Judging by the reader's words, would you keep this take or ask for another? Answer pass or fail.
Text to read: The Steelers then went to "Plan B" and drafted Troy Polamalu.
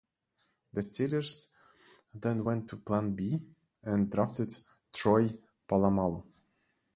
pass